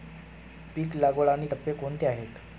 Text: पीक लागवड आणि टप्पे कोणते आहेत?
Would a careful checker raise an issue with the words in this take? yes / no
no